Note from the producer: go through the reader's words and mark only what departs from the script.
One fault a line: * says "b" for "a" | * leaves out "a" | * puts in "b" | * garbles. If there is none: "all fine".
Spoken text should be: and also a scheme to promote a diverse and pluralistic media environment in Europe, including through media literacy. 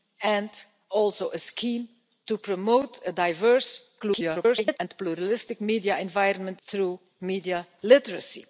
* garbles
* leaves out "in Europe including"